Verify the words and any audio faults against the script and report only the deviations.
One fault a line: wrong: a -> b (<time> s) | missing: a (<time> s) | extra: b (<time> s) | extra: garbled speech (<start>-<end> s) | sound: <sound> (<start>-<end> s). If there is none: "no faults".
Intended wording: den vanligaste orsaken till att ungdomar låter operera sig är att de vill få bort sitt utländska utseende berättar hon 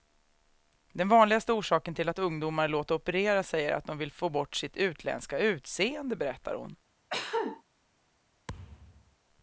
sound: cough (7.1-7.6 s)
sound: thud (8.5-9.2 s)